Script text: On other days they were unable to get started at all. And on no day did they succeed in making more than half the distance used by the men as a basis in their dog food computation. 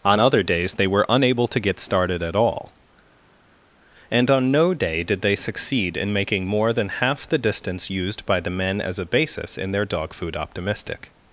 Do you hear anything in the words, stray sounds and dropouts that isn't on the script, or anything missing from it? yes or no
yes